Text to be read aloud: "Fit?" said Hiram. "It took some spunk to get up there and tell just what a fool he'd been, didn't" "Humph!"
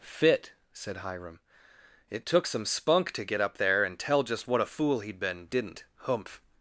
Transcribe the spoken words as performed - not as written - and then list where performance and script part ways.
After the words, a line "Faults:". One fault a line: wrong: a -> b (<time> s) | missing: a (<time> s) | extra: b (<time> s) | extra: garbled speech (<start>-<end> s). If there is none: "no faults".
"Fit?" said Hiram. "It took some spunk to get up there and tell just what a fool he'd been, didn't" "Humph!"
Faults:
no faults